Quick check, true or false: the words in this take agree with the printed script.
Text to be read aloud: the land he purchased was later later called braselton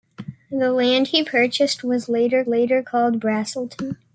true